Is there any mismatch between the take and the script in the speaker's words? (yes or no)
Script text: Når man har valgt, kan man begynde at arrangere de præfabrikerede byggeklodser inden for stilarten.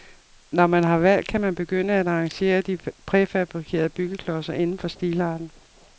no